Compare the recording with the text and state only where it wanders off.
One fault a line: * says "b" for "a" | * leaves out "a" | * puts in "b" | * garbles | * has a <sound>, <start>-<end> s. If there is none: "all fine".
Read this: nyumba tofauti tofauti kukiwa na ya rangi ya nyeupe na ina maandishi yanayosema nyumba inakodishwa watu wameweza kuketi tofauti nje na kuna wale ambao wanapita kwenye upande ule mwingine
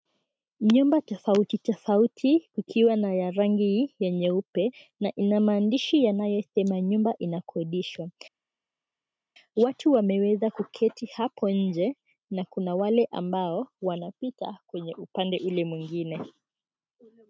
* says "hapo" for "tofauti"